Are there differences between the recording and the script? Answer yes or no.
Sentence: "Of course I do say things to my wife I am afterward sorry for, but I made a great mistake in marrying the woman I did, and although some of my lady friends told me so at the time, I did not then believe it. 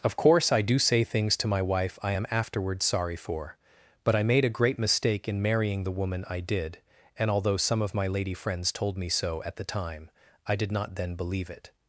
no